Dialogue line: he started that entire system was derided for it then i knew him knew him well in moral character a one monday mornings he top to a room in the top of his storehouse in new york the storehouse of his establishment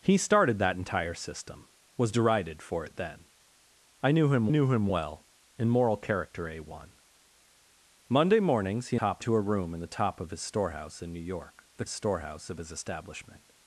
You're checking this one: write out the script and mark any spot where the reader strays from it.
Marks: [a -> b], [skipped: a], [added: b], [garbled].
he started that entire system was derided for it then i knew him knew him well in moral character a one monday mornings he top to a room in the top of his storehouse in new york the storehouse of his establishment